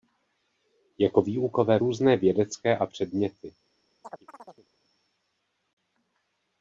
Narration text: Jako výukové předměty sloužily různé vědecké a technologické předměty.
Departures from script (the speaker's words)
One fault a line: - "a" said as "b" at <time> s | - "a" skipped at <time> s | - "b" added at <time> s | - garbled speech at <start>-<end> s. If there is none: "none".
- "předměty sloužily" skipped at 1.8 s
- "technologické" skipped at 2.9 s